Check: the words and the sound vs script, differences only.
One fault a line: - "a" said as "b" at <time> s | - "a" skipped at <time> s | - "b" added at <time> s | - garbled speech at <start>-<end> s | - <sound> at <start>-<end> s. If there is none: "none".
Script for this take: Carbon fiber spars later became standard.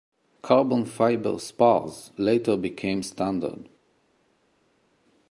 none